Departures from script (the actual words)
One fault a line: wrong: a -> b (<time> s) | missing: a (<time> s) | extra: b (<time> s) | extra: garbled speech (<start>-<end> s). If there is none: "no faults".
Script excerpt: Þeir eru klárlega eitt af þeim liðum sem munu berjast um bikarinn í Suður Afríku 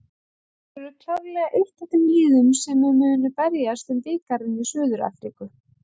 no faults